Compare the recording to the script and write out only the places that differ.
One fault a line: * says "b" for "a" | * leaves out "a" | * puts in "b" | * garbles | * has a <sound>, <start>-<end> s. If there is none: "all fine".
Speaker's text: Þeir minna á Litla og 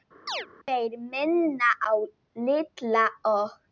* has a chirp, 0.3-0.5 s